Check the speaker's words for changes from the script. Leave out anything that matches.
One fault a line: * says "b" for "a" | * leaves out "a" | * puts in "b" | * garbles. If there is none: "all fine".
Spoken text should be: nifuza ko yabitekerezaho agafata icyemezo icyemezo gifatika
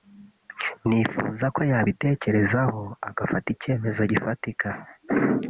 * leaves out "icyemezo"